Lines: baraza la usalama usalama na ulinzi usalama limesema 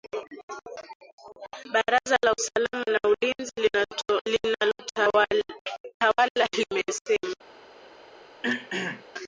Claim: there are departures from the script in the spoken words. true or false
true